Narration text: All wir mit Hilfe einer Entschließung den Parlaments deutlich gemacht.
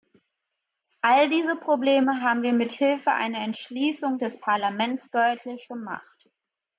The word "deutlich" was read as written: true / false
true